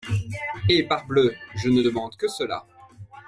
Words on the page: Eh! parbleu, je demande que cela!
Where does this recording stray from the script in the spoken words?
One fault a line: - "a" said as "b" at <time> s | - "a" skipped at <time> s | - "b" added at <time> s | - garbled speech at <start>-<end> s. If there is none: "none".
- "ne" added at 1.7 s